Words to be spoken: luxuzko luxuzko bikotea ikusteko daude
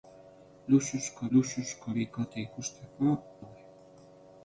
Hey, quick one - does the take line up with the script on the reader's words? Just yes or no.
yes